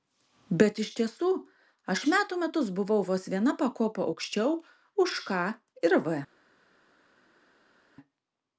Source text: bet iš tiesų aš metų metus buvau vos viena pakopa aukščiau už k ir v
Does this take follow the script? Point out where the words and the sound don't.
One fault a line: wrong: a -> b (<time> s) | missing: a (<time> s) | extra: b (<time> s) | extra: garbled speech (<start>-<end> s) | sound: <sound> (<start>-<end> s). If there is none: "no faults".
no faults